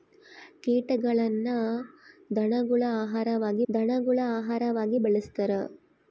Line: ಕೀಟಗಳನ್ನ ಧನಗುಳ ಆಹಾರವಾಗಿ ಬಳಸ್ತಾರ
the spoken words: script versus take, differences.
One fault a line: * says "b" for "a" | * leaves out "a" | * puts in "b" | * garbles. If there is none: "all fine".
* puts in "ಧನಗುಳ ಆಹಾರವಾಗಿ"